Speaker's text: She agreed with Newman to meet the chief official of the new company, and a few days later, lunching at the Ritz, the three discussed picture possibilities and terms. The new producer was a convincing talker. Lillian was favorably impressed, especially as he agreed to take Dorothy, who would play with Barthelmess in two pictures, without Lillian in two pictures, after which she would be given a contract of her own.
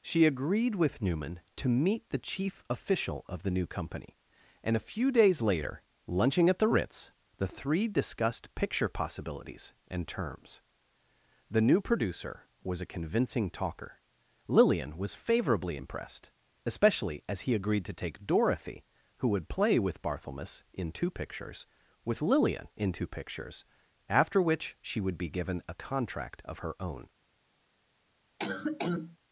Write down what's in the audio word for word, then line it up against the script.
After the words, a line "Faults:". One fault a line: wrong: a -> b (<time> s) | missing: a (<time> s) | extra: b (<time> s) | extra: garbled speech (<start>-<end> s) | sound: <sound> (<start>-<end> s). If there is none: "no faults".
She agreed with Newman to meet the chief official of the new company, and a few days later, lunching at the Ritz, the three discussed picture possibilities and terms. The new producer was a convincing talker. Lillian was favorably impressed, especially as he agreed to take Dorothy, who would play with Barthelmess in two pictures, with Lillian in two pictures, after which she would be given a contract of her own.
Faults:
wrong: without -> with (22.0 s)
sound: cough (28.4-29.2 s)